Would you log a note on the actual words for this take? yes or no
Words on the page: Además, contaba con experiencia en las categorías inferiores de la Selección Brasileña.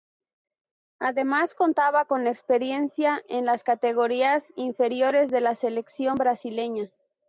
no